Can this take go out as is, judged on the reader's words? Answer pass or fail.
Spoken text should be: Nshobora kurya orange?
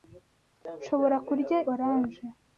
pass